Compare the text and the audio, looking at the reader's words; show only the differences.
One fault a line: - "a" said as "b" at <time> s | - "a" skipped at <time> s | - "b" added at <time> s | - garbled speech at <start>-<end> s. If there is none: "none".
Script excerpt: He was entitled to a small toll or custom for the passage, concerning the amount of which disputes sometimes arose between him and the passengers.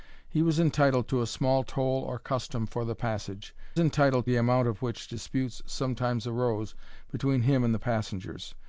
- "concerning" said as "entitled" at 3.8 s